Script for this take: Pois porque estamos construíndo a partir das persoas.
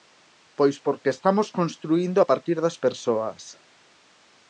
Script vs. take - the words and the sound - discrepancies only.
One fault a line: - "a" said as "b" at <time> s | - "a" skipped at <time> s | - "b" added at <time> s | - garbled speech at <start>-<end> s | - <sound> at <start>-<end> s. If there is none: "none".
none